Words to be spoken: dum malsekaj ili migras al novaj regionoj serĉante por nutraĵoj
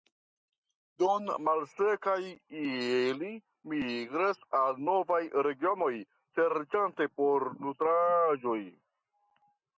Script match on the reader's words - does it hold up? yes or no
yes